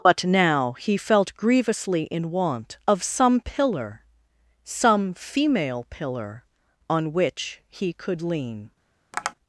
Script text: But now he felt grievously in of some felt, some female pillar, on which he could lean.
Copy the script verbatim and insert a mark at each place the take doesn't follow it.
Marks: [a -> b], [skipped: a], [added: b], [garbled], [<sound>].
But now he felt grievously in [added: want] of some [felt, -> pillar] some female pillar, on which he could lean. [tap]